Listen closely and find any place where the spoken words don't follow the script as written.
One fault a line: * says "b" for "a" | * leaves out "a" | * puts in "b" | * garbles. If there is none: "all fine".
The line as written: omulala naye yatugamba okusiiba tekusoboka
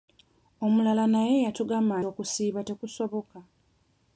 all fine